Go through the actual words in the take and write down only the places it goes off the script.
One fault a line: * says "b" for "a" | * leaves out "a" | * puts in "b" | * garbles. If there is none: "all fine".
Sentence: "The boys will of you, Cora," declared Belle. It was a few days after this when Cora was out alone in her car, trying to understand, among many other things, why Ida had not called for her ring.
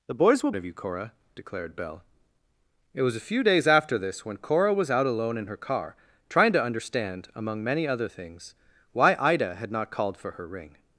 all fine